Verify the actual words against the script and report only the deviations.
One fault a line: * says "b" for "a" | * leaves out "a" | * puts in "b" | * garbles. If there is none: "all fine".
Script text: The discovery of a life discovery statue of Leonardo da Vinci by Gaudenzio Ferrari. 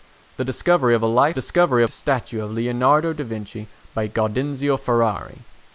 all fine